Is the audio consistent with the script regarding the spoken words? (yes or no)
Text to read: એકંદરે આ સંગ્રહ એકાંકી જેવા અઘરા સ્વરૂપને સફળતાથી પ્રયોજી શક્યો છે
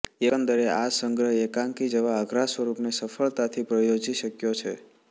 yes